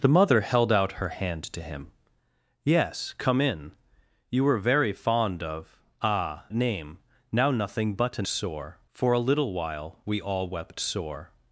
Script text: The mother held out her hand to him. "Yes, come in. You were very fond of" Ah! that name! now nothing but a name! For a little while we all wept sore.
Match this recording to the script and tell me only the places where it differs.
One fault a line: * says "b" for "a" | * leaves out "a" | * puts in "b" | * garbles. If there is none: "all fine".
* leaves out "that"
* says "sore" for "name"